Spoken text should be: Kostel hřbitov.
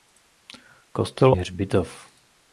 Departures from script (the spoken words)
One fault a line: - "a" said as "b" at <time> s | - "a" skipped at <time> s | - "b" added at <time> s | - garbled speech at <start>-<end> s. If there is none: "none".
none